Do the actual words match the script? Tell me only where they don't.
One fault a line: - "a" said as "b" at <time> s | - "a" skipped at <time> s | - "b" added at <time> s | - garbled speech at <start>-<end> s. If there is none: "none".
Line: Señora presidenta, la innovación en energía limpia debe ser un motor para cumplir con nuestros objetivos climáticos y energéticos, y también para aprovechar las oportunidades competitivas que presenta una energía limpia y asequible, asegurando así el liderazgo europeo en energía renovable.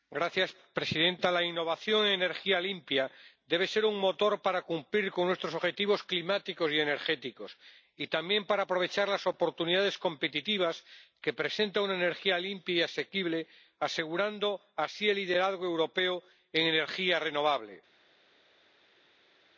none